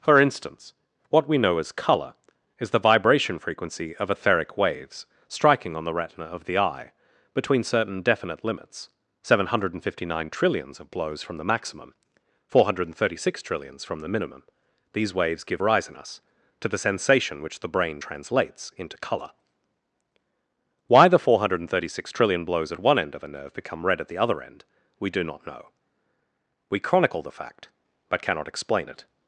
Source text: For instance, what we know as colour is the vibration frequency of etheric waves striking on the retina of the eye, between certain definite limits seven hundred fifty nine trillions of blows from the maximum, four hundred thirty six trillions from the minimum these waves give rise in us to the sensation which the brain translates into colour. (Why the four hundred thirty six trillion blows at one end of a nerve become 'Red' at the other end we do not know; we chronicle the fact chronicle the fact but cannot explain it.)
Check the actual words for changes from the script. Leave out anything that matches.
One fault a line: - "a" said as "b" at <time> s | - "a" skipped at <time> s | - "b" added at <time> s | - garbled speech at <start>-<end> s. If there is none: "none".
- "chronicle the fact" skipped at 27.7 s